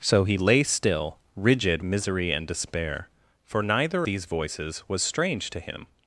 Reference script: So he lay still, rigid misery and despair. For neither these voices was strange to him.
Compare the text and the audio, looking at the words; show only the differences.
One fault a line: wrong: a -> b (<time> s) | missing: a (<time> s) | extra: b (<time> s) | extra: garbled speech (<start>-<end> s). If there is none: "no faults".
no faults